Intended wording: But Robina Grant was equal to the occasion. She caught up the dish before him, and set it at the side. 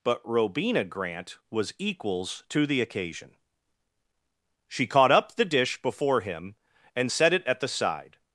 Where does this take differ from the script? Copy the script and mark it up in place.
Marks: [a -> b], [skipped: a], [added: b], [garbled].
But Robina Grant was [equal -> equals] to the occasion. She caught up the dish before him, and set it at the side.